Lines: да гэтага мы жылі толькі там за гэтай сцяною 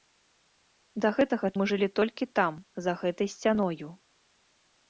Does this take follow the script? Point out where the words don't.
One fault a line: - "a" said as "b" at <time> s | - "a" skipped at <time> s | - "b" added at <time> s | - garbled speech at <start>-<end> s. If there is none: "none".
none